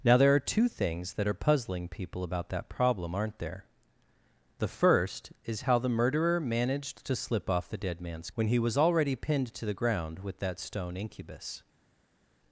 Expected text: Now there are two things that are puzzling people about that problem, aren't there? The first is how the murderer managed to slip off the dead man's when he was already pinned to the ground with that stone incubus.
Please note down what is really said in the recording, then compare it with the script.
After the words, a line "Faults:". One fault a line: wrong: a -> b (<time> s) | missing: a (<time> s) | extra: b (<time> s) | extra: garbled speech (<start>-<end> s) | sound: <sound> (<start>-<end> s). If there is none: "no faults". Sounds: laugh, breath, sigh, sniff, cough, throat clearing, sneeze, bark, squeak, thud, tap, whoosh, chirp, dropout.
Now there are two things that are puzzling people about that problem, aren't there? The first is how the murderer managed to slip off the dead man's when he was already pinned to the ground with that stone incubus.
Faults:
no faults